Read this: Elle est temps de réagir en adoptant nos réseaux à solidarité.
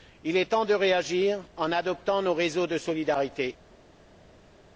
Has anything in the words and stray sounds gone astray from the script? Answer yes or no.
yes